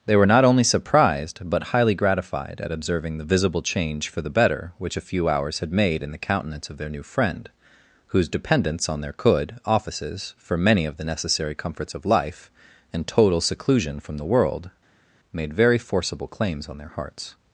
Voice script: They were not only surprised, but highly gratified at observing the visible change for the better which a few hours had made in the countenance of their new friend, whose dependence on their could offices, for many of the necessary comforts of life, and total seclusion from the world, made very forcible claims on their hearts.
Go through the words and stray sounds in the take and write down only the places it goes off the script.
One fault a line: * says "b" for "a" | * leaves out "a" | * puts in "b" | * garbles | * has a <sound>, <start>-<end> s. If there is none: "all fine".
all fine